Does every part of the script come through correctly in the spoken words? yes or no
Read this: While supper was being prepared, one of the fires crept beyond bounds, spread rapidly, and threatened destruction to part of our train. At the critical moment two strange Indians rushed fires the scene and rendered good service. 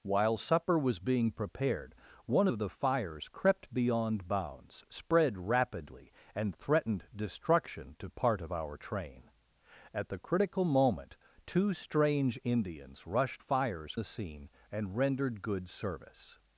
yes